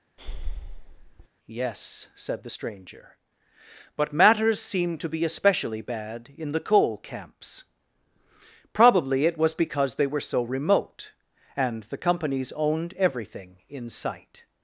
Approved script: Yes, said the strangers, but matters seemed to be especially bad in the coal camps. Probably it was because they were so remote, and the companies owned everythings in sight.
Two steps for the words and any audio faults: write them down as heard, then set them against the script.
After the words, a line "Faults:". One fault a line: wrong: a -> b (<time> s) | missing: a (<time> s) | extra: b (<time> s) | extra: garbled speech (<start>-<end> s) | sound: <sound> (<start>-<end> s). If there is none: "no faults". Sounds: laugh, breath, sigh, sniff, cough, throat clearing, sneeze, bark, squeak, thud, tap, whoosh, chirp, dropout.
Yes, said the stranger, but matters seemed to be especially bad in the coal camps. Probably it was because they were so remote, and the companies owned everything in sight.
Faults:
sound: breath (0.2-1.3 s)
wrong: strangers -> stranger (2.5 s)
wrong: everythings -> everything (13.0 s)